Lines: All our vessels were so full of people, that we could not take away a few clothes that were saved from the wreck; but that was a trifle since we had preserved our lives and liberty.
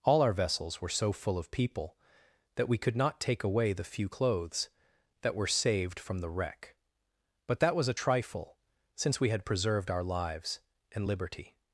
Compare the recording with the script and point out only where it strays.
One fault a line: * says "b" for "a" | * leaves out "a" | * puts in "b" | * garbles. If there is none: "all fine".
* says "the" for "a"